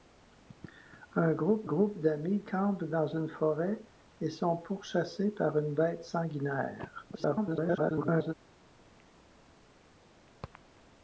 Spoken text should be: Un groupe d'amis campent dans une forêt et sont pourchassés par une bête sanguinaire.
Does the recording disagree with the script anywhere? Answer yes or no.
yes